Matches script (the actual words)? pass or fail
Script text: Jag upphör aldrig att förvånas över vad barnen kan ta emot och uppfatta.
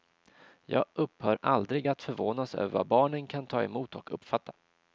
pass